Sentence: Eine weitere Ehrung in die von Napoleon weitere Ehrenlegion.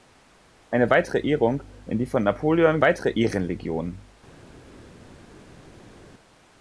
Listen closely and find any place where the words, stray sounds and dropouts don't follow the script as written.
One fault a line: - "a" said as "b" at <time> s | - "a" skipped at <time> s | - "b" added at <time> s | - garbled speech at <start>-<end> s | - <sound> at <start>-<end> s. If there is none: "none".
none